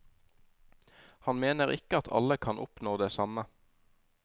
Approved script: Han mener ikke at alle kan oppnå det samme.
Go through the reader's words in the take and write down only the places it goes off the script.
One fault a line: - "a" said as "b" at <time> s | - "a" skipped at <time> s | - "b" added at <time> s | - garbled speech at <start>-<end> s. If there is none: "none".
none